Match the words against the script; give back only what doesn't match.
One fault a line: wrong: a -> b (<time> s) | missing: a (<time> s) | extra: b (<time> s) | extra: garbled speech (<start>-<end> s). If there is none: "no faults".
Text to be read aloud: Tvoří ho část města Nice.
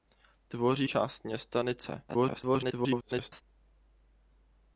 missing: ho (0.9 s)
extra: garbled speech (2.1-3.4 s)